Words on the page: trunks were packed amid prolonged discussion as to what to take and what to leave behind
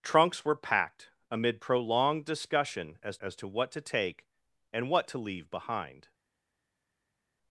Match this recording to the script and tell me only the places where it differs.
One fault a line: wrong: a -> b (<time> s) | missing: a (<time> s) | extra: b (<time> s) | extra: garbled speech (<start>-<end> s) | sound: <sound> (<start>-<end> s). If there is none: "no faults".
extra: as (3.2 s)